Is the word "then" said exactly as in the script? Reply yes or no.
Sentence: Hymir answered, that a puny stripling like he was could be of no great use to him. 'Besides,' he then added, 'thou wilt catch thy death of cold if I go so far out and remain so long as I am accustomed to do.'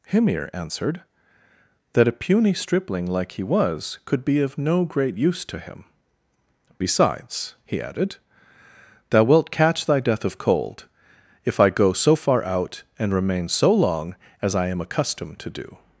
no